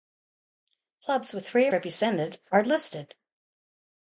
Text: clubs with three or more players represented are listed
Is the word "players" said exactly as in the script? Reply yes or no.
no